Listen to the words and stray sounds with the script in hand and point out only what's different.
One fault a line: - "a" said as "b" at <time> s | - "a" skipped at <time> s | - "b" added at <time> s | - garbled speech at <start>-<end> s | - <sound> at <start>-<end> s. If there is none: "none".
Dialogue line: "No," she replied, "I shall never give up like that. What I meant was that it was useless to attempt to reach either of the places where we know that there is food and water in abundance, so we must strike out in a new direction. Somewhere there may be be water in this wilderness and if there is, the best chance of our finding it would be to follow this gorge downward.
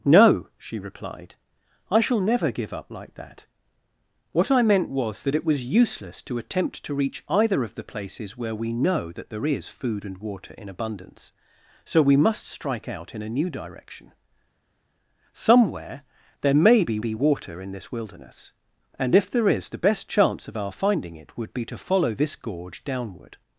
none